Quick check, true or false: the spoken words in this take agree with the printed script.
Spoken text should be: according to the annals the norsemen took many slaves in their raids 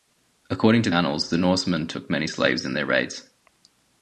false